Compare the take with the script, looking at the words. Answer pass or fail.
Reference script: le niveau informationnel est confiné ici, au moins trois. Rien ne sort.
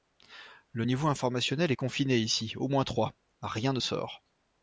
pass